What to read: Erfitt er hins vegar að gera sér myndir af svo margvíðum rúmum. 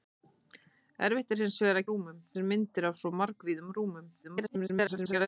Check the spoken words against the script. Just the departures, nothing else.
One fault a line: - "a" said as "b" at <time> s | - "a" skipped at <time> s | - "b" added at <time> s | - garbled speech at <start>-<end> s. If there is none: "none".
- "gera" said as "rúmum" at 1.9 s
- garbled speech at 4.2-5.3 s